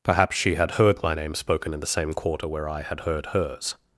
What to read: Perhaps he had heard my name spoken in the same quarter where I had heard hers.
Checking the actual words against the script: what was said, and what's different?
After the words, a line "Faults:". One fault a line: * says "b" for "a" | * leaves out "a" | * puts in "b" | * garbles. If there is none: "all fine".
Perhaps she had heard my name spoken in the same quarter where I had heard hers.
Faults:
* says "she" for "he"